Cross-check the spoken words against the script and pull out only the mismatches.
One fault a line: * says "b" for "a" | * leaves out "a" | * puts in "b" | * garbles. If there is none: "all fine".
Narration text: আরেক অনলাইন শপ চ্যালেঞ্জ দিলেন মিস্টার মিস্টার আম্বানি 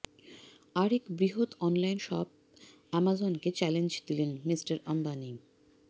* puts in "বৃহৎ"
* puts in "অ্যামাজনকে"
* leaves out "মিস্টার"